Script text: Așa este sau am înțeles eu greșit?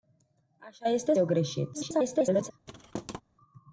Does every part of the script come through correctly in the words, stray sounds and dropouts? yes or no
no